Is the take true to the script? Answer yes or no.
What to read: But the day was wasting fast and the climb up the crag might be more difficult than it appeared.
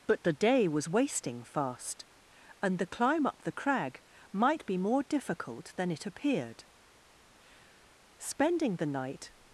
no